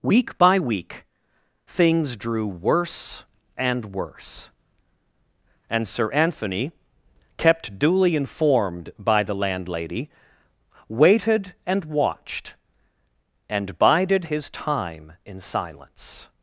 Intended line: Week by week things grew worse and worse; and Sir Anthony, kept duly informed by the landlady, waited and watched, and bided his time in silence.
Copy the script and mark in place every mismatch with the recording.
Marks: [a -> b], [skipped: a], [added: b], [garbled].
Week by week things [grew -> drew] worse and worse; and Sir Anthony, kept duly informed by the landlady, waited and watched, and bided his time in silence.